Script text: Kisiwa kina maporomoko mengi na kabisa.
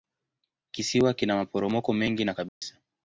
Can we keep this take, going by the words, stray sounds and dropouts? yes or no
no